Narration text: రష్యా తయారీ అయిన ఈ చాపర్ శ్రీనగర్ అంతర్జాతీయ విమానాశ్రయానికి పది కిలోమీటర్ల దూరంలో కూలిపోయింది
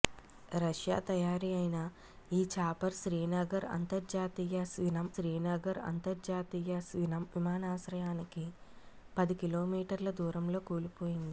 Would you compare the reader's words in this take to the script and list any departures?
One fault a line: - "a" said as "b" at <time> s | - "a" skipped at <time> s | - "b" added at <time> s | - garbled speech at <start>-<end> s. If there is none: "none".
- "శ్రీనగర్ అంతర్జాతీయ" added at 5.1 s